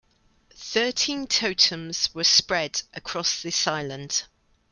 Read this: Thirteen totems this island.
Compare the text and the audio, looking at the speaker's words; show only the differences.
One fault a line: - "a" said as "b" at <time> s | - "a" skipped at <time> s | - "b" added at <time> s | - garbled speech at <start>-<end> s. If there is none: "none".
- "were spread across" added at 2.1 s